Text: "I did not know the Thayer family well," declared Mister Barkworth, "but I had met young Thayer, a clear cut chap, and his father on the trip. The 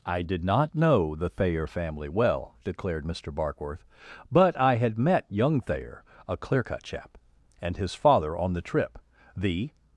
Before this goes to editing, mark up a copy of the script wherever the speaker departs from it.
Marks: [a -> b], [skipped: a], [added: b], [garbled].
"I did not know the Thayer family well," declared Mister Barkworth, "but I had met young Thayer, a clear cut chap, and his father on the trip. The